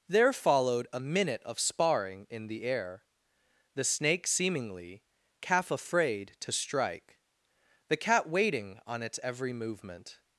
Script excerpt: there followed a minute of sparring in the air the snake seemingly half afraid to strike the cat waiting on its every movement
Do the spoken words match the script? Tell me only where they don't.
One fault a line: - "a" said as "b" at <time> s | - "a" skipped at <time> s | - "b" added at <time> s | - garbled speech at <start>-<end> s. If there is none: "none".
- "half" said as "calf" at 5.4 s